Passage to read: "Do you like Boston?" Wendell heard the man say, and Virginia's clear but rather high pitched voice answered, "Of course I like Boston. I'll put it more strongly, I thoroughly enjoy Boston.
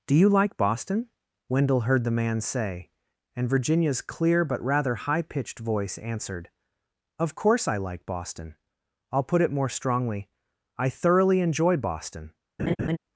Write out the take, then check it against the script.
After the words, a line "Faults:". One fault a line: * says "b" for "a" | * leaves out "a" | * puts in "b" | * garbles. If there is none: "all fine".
"Do you like Boston?" Wendell heard the man say, and Virginia's clear but rather high pitched voice answered, "Of course I like Boston. I'll put it more strongly, I thoroughly enjoy Boston.
Faults:
all fine